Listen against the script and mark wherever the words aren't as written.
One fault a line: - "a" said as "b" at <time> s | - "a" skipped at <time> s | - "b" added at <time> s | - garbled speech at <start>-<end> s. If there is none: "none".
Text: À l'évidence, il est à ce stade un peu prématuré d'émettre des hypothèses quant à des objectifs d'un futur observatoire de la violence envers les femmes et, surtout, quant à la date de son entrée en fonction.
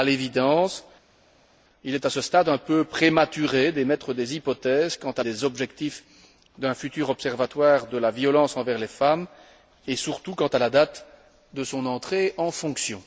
none